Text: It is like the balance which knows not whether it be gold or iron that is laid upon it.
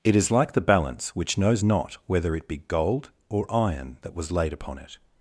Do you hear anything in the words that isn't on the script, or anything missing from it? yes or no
yes